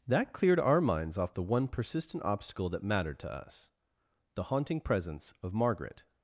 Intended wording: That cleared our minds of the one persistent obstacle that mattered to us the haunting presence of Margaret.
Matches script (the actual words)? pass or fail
fail